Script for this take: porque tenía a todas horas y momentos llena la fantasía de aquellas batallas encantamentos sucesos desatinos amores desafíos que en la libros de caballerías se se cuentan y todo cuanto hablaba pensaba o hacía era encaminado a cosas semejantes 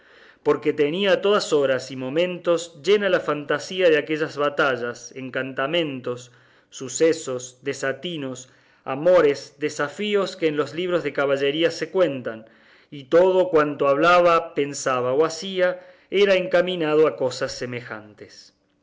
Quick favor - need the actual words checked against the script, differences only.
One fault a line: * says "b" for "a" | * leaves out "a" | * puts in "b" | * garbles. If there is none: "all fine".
* says "los" for "la"
* leaves out "se"